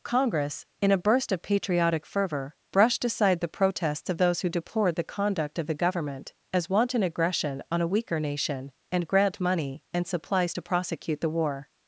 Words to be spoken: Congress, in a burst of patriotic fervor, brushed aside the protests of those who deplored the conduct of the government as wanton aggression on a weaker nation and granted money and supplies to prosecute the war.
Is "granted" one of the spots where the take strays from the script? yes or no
yes